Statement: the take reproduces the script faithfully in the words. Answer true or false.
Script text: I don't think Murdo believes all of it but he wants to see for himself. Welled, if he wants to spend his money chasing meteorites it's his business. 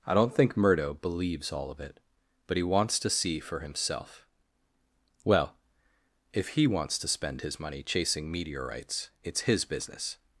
false